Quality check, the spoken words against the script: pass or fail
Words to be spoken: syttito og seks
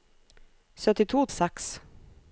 pass